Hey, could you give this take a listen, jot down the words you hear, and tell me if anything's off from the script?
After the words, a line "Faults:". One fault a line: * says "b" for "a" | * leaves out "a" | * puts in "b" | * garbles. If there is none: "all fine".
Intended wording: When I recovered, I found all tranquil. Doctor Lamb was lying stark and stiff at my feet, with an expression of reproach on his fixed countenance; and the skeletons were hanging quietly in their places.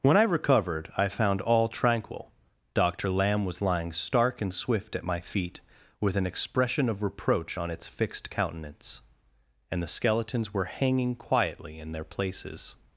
When I recovered, I found all tranquil. Doctor Lamb was lying stark and swift at my feet, with an expression of reproach on its fixed countenance; and the skeletons were hanging quietly in their places.
Faults:
* says "swift" for "stiff"
* says "its" for "his"